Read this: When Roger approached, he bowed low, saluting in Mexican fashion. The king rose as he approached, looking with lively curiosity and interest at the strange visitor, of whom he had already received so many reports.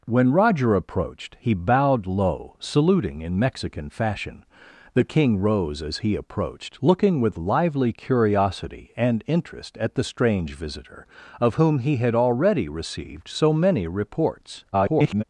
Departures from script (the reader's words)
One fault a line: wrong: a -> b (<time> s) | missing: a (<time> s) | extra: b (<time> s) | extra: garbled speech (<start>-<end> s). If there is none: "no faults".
extra: garbled speech (14.7-15.2 s)